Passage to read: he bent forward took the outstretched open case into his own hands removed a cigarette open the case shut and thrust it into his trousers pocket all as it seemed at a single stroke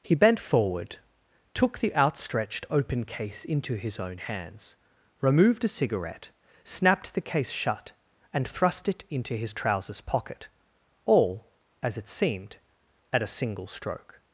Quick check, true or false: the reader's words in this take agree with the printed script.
false